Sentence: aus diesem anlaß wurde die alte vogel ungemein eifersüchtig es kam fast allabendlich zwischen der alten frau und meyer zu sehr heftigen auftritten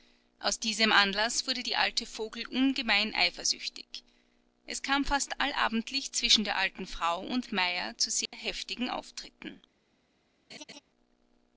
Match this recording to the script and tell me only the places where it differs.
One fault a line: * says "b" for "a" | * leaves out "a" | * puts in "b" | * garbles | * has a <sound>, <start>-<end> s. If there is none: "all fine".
* has a dropout, 8.3-8.3 s
* has a laugh, 10.5-10.8 s